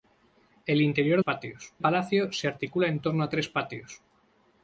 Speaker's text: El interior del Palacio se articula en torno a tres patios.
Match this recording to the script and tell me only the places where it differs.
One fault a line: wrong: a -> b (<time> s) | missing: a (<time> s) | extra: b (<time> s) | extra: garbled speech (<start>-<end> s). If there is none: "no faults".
wrong: del -> patios (1.2 s)